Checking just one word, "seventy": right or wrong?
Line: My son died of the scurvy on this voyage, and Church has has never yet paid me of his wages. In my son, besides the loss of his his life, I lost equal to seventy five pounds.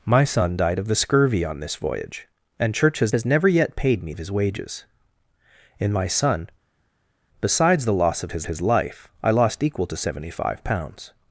right